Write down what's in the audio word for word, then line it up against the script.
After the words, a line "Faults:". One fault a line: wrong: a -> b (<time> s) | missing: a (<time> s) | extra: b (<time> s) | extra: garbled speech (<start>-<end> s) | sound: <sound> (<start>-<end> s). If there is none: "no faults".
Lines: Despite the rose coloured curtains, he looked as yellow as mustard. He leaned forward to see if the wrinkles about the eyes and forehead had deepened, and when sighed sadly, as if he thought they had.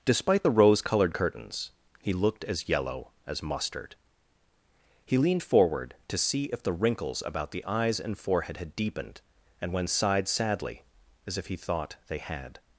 Despite the rose coloured curtains, he looked as yellow as mustard. He leaned forward to see if the wrinkles about the eyes and forehead had deepened, and when sighed sadly, as if he thought they had.
Faults:
no faults